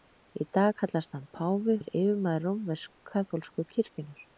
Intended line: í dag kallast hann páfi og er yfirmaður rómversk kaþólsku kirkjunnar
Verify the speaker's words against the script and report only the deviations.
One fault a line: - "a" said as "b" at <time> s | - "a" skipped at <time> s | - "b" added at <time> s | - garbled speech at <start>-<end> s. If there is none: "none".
- "og" skipped at 1.8 s